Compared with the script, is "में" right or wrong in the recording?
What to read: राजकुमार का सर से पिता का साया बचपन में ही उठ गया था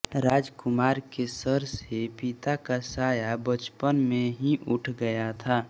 right